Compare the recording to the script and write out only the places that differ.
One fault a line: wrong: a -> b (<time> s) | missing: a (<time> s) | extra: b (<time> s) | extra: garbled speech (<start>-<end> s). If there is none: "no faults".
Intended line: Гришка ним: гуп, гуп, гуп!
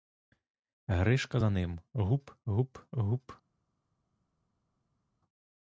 extra: за (1.3 s)